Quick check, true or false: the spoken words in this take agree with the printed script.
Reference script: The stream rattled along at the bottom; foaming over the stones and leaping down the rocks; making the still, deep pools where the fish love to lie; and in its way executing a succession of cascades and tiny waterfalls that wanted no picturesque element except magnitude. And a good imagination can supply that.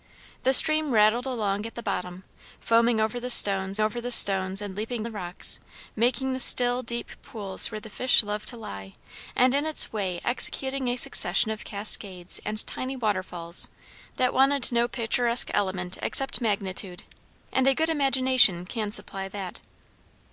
false